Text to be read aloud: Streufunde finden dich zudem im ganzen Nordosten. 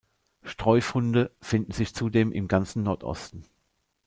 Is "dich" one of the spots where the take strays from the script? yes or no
yes